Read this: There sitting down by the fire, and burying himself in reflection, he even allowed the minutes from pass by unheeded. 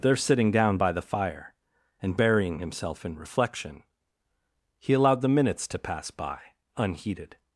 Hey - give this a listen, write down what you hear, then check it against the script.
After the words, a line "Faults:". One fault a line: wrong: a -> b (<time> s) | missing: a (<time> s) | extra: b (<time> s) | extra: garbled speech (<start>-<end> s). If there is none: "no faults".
There sitting down by the fire, and burying himself in reflection, he allowed the minutes to pass by unheeded.
Faults:
missing: even (4.9 s)
wrong: from -> to (5.7 s)